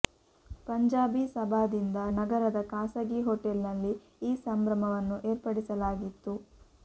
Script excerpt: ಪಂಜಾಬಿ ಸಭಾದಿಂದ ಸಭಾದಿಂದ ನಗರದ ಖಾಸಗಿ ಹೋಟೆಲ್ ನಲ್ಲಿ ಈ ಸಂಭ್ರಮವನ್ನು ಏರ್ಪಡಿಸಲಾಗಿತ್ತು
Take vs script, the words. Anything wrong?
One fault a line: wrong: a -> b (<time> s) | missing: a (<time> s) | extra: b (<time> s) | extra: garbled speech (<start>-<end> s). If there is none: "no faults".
missing: ಸಭಾದಿಂದ (2.0 s)